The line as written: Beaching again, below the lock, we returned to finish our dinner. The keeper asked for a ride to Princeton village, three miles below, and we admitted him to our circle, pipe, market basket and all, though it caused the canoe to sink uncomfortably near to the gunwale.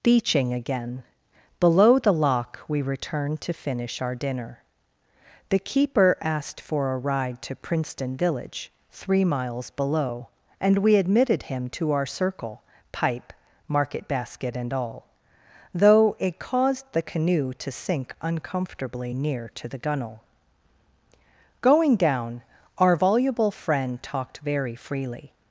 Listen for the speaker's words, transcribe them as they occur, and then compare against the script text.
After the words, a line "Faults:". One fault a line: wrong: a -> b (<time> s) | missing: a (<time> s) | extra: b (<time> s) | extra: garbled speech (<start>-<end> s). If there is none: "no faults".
Beaching again, below the lock, we returned to finish our dinner. The keeper asked for a ride to Princeton village, three miles below, and we admitted him to our circle, pipe, market basket and all, though it caused the canoe to sink uncomfortably near to the gunwale. Going down, our voluble friend talked very freely
Faults:
extra: Going down our voluble friend talked very freely (21.6 s)